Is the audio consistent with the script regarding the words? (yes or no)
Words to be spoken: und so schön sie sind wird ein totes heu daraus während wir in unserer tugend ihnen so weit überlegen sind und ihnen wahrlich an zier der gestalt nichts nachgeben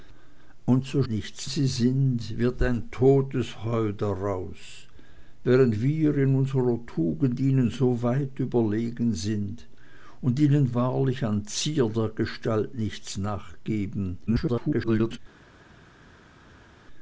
no